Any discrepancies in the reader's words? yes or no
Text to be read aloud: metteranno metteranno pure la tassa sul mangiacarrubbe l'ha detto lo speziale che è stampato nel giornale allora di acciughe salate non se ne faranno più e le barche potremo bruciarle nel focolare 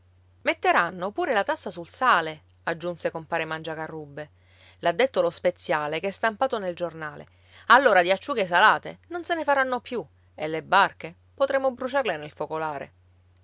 yes